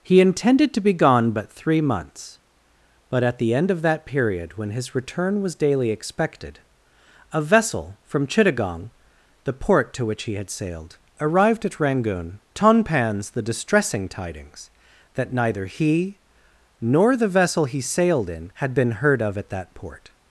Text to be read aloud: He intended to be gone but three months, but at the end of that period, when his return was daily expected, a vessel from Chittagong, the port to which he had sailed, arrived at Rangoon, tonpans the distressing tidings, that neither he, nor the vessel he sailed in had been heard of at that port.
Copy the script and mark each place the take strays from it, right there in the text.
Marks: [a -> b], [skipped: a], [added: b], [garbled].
He intended to be gone but three months, but at the end of that period, when his return was daily expected, a vessel from Chittagong, the port to which he had sailed, arrived at Rangoon, tonpans the distressing tidings, that neither he, nor the vessel he sailed in had been heard of at that port.